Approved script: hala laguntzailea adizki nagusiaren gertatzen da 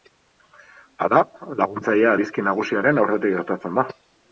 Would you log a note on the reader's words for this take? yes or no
yes